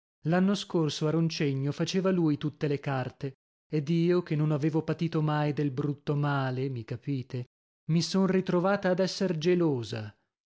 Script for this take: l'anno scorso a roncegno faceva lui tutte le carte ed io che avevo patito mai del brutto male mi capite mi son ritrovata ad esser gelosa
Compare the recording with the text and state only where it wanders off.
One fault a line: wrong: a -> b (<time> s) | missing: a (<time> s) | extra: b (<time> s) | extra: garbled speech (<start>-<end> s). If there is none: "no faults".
extra: non (4.3 s)